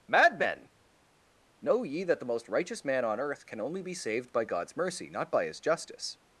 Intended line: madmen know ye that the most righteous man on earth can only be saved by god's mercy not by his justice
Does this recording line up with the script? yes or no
yes